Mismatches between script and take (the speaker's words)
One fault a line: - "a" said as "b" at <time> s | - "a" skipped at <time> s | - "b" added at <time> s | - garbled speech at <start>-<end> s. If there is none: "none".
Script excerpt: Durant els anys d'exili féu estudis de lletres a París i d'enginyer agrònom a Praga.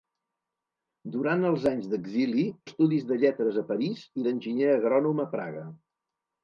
- "féu" skipped at 2.5 s